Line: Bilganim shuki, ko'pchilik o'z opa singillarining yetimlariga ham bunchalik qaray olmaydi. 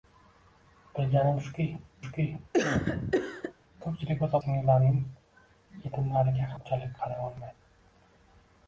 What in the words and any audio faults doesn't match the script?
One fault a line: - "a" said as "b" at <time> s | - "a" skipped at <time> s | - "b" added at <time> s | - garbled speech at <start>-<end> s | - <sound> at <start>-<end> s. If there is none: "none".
- "shuki" added at 2.1 s
- cough at 2.5-3.5 s
- "opa" skipped at 4.4 s
- "ham" skipped at 6.5 s